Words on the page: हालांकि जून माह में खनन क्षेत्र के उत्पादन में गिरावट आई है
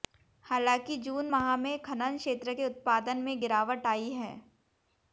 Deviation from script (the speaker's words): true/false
false